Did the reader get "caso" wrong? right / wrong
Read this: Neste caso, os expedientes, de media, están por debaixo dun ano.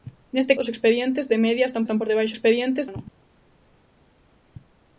wrong